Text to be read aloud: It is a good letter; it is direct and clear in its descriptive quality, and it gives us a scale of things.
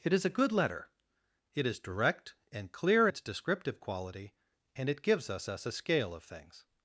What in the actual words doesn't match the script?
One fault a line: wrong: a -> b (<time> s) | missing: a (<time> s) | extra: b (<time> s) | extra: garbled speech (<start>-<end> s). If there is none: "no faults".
missing: in (3.1 s)
extra: us (5.5 s)